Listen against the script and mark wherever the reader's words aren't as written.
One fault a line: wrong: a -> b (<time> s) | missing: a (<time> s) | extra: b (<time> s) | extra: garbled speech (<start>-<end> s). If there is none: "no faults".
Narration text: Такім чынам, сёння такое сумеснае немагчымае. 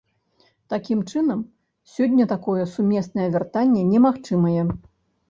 extra: вяртанне (3.3 s)